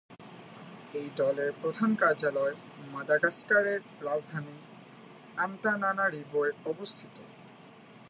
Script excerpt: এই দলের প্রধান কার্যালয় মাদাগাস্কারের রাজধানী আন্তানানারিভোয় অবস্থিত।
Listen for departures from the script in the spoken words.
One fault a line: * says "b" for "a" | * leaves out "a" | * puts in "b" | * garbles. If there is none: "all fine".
all fine